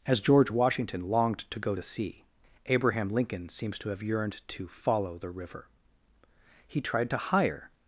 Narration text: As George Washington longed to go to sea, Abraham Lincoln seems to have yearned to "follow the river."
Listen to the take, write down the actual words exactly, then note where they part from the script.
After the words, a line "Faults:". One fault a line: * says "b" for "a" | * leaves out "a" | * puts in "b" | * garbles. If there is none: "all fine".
As George Washington longed to go to sea, Abraham Lincoln seems to have yearned to "follow the river." He tried to hire
Faults:
* puts in "He tried to hire"